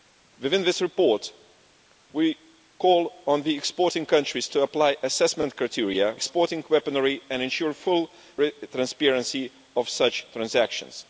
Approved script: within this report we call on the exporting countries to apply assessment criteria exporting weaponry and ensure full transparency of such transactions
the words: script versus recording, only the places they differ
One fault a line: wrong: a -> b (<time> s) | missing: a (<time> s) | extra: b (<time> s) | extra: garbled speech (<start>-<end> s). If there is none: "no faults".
no faults